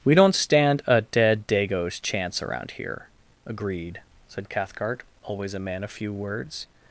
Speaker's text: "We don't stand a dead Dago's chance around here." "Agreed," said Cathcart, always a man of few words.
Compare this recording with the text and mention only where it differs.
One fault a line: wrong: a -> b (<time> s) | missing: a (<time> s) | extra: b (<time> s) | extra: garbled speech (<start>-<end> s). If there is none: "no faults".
no faults